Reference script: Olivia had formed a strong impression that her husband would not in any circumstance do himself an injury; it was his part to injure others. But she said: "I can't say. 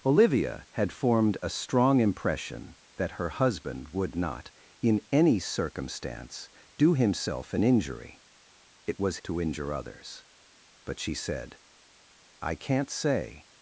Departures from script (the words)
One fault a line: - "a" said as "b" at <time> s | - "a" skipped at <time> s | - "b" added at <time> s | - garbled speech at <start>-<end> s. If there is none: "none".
- "his part" skipped at 9.2 s